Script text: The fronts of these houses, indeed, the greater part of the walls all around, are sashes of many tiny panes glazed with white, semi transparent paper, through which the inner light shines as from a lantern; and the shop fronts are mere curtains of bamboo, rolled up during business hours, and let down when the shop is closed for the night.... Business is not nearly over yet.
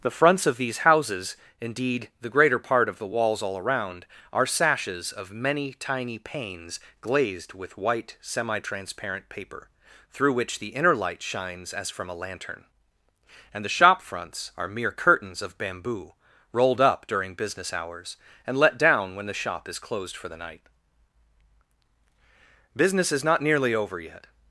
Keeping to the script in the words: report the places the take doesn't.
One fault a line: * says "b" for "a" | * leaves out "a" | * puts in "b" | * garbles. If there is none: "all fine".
all fine